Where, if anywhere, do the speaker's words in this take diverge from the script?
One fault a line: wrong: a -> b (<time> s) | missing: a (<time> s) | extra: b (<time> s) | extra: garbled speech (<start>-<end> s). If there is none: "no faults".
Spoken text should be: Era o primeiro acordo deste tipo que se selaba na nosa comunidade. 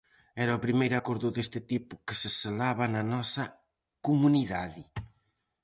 no faults